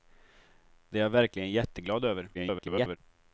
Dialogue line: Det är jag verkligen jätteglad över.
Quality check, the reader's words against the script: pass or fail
fail